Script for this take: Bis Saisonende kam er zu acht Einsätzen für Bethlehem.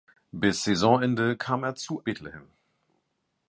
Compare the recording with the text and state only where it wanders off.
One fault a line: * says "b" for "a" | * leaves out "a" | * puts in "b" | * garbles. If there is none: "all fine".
* leaves out "acht Einsätzen für"